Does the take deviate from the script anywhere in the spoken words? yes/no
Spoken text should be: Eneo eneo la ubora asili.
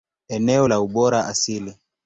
yes